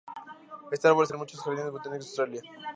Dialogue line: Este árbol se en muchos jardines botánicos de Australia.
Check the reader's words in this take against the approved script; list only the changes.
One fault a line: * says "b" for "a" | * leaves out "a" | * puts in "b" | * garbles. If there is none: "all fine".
all fine